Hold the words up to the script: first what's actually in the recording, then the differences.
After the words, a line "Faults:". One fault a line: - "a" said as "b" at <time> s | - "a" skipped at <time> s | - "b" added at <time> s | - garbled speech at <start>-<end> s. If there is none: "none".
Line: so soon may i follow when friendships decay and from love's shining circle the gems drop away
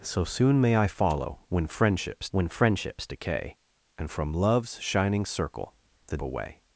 so soon may i follow when friendships when friendships decay and from love's shining circle the away
Faults:
- "when friendships" added at 2.3 s
- "gems drop" skipped at 6.2 s